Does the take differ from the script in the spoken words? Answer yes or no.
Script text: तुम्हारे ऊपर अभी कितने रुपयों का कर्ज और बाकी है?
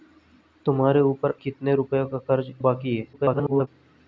yes